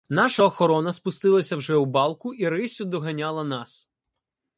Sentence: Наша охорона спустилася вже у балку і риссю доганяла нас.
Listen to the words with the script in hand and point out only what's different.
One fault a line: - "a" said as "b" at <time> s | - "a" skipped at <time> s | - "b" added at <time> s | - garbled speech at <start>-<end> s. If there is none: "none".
none